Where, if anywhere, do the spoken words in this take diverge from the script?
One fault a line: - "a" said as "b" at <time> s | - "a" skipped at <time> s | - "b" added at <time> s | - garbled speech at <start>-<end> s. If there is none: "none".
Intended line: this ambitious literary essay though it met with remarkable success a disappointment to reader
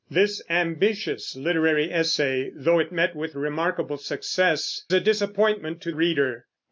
none